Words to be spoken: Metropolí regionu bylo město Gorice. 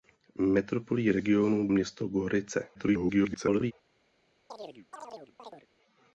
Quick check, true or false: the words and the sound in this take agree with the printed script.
false